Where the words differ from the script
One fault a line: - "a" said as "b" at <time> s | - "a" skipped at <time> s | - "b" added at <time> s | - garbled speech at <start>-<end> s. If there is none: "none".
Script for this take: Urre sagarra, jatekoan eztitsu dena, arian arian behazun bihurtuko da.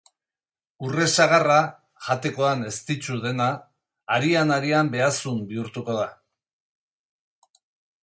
none